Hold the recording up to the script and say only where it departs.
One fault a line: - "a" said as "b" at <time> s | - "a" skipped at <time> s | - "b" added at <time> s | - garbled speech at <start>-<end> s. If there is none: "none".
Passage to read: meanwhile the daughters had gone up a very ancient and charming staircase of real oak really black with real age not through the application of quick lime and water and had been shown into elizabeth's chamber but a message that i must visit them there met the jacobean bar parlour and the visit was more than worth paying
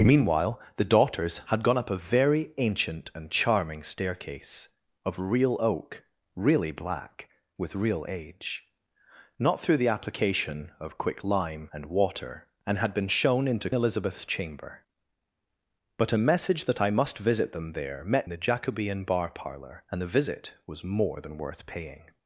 none